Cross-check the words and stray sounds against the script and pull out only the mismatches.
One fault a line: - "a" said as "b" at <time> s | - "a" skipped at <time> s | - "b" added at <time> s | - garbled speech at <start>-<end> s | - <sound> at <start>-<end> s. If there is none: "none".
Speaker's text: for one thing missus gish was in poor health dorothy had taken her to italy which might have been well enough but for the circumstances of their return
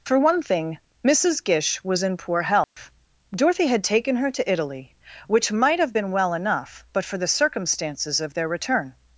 - dropout at 2.6-2.8 s